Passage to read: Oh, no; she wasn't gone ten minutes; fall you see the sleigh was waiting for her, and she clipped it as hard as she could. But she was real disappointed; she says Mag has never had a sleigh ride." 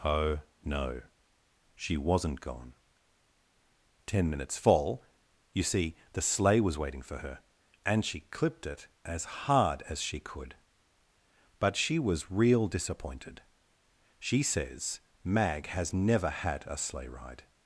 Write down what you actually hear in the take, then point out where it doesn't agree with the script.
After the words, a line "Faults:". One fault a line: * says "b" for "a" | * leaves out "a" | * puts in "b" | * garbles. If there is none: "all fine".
Oh, no; she wasn't gone ten minutes; fall you see the sleigh was waiting for her, and she clipped it as hard as she could. But she was real disappointed; she says Mag has never had a sleigh ride."
Faults:
all fine